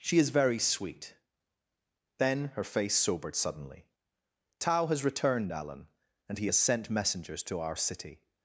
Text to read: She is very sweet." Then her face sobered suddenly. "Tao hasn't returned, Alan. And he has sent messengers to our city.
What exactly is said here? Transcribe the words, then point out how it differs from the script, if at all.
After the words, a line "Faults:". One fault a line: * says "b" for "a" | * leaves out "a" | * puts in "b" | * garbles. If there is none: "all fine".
She is very sweet." Then her face sobered suddenly. "Tao has returned, Alan. And he has sent messengers to our city.
Faults:
* says "has" for "hasn't"